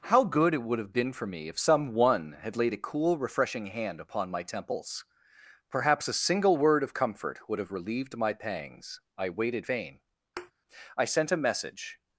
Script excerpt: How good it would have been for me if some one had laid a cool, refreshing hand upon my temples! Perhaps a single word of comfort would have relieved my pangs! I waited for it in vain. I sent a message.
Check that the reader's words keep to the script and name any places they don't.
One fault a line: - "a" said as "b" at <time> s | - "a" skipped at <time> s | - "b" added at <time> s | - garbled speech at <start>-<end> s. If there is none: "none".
- "for it in" skipped at 9.7 s